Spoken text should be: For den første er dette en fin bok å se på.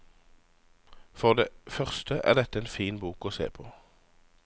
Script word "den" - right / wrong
wrong